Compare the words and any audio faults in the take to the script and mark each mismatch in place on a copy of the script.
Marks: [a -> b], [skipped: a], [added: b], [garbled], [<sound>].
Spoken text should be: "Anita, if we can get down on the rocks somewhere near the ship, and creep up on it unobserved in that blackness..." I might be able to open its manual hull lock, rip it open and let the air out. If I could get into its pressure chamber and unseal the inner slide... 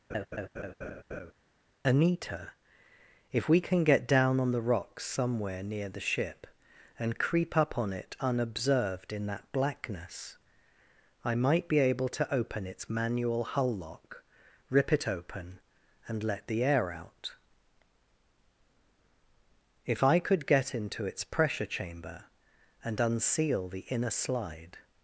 [laugh] "Anita, if we can get down on the rocks somewhere near the ship, and creep up on it unobserved in that blackness..." I might be able to open its manual hull lock, rip it open and let the air out. If I could get into its pressure chamber and unseal the inner slide...